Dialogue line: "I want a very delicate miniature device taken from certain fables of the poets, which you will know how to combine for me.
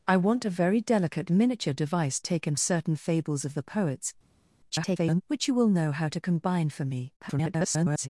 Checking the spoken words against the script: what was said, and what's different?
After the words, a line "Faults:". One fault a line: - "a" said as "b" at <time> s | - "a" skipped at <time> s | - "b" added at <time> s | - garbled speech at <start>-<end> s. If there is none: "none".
"I want a very delicate miniature device taken certain fables of the poets, [garbled] which you will know how to combine for me. [garbled]
Faults:
- "from" skipped at 2.6 s
- garbled speech at 4.7-5.2 s
- garbled speech at 7.2-8.1 s